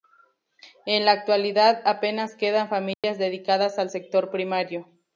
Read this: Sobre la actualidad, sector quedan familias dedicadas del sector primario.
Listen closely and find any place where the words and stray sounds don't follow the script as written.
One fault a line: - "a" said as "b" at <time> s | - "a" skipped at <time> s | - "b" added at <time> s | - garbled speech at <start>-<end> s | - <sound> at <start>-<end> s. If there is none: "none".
- "Sobre" said as "En" at 0.9 s
- "sector" said as "apenas" at 1.9 s
- dropout at 2.9-3.0 s
- "del" said as "al" at 3.8 s